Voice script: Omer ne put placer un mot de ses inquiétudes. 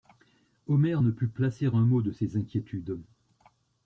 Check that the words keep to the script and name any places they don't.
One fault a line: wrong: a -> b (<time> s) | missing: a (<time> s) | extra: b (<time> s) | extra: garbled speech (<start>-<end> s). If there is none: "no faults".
no faults